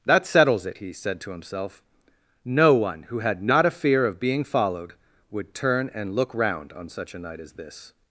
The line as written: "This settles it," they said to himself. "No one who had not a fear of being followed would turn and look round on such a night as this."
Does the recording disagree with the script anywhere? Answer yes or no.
yes